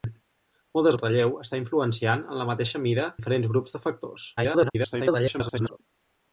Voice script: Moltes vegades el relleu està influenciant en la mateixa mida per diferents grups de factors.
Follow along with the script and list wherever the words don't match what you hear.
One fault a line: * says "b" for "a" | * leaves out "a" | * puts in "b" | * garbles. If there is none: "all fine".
* leaves out "vegades"
* leaves out "per"
* garbles